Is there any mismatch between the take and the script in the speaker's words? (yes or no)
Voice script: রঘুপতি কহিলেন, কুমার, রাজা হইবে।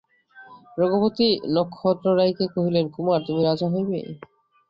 yes